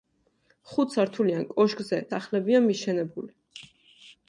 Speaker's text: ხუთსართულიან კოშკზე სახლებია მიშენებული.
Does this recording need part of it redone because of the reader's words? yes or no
no